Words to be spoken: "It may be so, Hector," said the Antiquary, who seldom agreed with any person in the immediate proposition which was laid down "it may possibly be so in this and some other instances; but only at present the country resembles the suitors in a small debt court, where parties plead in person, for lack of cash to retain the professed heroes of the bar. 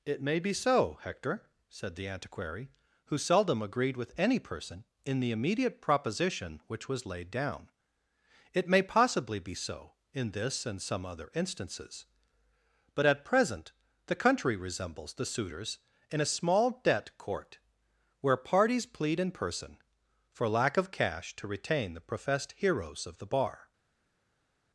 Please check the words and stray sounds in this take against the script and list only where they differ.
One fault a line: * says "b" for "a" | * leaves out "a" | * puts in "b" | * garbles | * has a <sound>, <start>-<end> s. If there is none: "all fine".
* leaves out "only"